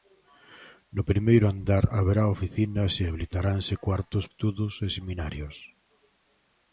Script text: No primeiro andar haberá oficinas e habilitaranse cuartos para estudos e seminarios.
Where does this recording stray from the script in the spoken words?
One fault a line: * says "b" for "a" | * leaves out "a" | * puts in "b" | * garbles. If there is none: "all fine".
* leaves out "para"